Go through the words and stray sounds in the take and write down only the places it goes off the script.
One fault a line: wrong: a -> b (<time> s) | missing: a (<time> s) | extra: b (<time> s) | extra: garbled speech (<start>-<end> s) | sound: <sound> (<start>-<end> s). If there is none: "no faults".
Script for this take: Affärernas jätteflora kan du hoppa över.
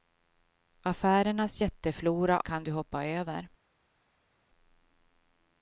no faults